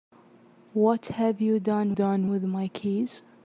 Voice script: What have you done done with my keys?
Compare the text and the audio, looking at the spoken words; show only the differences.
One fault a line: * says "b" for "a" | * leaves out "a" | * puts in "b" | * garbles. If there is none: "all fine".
all fine